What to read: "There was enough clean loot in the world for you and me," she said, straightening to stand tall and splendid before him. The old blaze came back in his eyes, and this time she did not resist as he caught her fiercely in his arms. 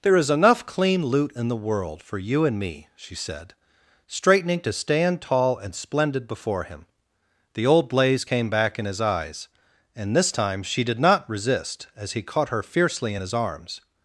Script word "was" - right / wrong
wrong